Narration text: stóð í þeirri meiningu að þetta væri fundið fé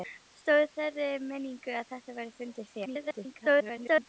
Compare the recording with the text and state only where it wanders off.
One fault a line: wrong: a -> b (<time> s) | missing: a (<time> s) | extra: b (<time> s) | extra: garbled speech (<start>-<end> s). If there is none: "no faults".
extra: garbled speech (2.8-4.1 s)